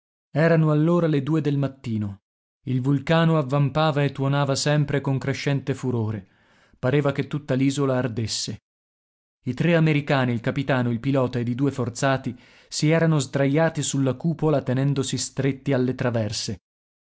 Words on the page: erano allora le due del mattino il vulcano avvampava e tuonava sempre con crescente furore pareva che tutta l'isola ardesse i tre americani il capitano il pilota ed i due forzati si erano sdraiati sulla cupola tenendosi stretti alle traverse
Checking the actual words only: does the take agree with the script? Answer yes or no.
yes